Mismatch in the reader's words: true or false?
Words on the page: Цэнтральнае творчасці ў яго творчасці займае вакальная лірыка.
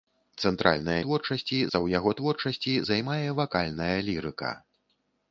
false